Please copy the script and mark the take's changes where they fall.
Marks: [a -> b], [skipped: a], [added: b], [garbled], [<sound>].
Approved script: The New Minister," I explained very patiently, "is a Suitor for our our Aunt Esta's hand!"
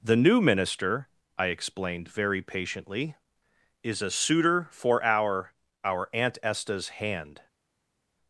The New Minister," I explained very patiently, "is a Suitor for our our Aunt Esta's hand!"